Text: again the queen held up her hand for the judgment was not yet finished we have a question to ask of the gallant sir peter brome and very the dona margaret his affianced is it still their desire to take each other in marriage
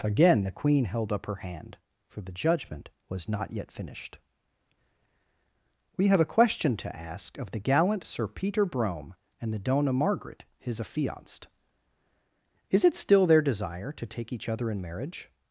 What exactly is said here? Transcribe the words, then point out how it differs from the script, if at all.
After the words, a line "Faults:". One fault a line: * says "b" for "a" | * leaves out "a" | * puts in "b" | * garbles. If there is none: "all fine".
again the queen held up her hand for the judgment was not yet finished we have a question to ask of the gallant sir peter brome and the dona margaret his affianced is it still their desire to take each other in marriage
Faults:
* leaves out "very"